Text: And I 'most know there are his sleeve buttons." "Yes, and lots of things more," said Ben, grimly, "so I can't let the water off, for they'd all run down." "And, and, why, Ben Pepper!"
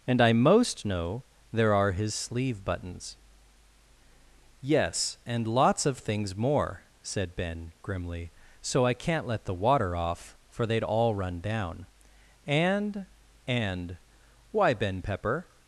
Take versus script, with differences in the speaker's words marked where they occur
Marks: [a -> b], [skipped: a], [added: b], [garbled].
And I 'most know there are his sleeve buttons." "Yes, and lots of things more," said Ben, grimly, "so I can't let the water off, for they'd all run down." "And, and, why, Ben Pepper!"